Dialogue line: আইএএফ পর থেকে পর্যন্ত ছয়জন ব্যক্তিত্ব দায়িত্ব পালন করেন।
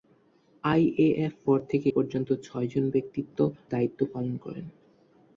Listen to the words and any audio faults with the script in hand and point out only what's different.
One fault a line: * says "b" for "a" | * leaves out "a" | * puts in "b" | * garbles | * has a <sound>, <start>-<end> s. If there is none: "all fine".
all fine